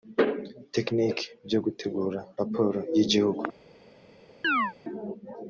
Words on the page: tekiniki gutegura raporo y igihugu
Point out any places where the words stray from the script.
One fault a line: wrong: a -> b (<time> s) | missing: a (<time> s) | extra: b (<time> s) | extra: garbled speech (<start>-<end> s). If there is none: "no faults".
extra: byo (1.5 s)